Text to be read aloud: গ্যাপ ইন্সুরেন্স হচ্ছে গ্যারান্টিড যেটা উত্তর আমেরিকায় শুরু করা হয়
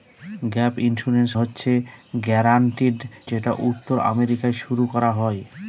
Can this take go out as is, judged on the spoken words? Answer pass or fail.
pass